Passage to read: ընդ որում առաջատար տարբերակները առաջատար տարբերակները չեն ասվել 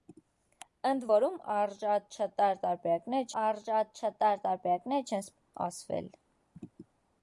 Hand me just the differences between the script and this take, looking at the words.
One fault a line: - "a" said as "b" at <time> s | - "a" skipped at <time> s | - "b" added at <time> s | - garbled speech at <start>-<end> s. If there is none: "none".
none